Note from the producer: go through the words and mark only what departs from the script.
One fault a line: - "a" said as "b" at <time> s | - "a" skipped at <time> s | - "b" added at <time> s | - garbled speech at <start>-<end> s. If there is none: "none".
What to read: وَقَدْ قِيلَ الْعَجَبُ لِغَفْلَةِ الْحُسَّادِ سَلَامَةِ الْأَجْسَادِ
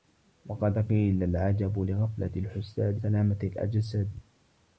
none